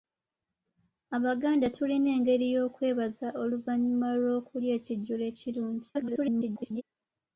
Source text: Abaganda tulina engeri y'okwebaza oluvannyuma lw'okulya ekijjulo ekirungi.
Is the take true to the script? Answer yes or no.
no